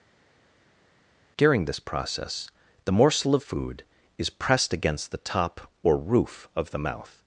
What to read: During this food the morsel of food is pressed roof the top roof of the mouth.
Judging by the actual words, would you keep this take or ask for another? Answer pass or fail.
fail